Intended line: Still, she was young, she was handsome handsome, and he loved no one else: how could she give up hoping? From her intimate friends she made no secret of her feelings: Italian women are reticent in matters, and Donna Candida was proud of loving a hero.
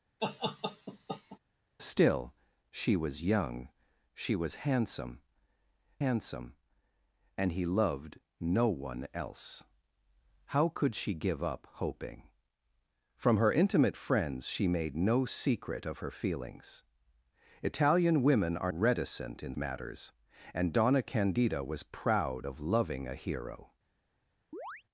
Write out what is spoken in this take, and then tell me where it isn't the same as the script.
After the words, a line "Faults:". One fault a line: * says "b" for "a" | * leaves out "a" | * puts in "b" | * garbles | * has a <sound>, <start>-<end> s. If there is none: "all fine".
Still, she was young, she was handsome handsome, and he loved no one else: how could she give up hoping? From her intimate friends she made no secret of her feelings: Italian women are reticent in matters, and Donna Candida was proud of loving a hero.
Faults:
* has a laugh, 0.2-1.4 s
* has a chirp, 24.5-24.8 s